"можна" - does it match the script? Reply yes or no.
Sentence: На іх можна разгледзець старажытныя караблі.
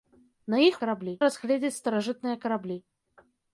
no